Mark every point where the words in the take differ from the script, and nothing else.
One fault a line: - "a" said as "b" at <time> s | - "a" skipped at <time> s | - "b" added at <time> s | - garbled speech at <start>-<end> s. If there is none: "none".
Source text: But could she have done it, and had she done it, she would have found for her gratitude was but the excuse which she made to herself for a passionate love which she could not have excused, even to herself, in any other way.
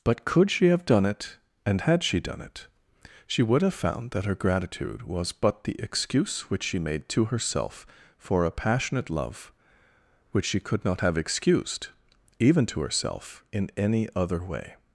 - "for" said as "that" at 4.1 s